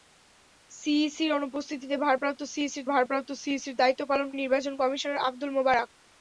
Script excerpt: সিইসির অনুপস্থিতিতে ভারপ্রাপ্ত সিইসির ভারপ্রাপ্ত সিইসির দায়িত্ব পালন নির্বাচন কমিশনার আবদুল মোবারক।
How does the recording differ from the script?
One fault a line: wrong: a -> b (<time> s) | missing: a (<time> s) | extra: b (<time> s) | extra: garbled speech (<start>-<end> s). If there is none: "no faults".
no faults